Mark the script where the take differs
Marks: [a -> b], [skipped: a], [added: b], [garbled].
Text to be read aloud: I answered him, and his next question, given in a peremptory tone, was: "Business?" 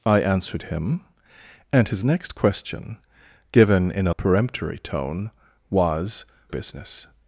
I answered him, and his next question, given in a peremptory tone, was: "Business?"